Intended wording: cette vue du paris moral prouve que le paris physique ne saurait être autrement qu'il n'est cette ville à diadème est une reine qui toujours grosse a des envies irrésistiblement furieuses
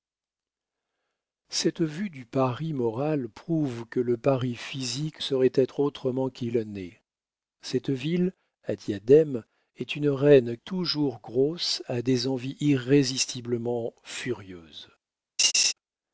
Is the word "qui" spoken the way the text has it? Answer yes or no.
no